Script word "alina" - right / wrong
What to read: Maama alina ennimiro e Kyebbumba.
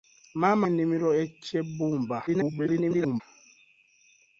wrong